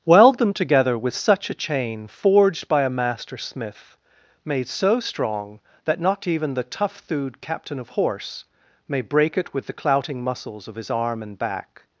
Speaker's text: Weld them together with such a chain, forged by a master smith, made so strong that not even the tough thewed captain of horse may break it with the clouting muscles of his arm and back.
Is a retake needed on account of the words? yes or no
no